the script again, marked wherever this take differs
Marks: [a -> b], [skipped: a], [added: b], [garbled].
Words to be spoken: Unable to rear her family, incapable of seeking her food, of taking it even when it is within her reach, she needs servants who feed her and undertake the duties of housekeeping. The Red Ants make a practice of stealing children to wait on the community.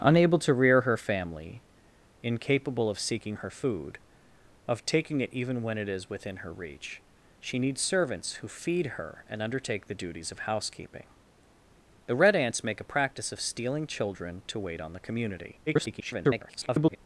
Unable to rear her family, incapable of seeking her food, of taking it even when it is within her reach, she needs servants who feed her and undertake the duties of housekeeping. The Red Ants make a practice of stealing children to wait on the community. [garbled]